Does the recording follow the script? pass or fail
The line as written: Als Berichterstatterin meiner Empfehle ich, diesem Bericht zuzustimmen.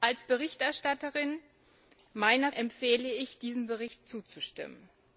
pass